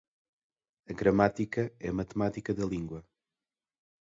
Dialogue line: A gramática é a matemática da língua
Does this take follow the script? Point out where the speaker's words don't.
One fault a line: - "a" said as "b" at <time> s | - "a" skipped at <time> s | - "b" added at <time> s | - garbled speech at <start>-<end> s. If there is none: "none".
none